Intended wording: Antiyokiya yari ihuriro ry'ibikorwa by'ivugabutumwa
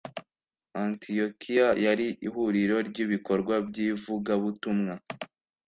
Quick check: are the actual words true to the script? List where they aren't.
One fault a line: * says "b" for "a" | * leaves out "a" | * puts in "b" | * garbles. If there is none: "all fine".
all fine